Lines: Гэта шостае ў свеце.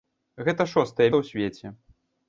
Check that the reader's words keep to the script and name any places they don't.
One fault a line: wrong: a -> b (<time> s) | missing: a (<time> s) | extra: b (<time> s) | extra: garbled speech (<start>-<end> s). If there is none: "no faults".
no faults